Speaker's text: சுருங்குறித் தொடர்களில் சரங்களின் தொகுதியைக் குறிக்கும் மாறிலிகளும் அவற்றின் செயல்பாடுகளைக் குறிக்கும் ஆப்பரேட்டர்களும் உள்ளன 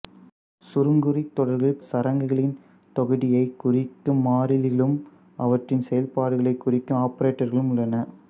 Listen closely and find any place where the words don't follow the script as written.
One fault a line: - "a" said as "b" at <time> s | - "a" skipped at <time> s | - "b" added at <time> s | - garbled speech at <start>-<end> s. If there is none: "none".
none